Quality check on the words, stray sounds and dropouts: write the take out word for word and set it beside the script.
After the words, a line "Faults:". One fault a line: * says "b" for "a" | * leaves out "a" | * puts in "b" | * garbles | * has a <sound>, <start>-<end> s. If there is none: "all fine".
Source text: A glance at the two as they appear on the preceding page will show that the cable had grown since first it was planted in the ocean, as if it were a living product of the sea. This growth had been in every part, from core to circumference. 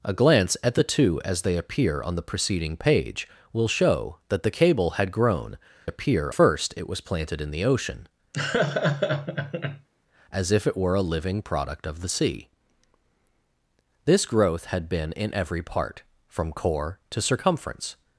A glance at the two as they appear on the preceding page will show that the cable had grown appear first it was planted in the ocean, as if it were a living product of the sea. This growth had been in every part, from core to circumference.
Faults:
* says "appear" for "since"
* has a laugh, 8.3-9.9 s